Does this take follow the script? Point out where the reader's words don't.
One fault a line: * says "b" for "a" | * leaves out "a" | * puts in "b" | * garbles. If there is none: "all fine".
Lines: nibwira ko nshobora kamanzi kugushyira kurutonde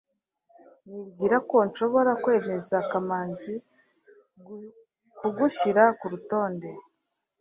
* puts in "kwemeza"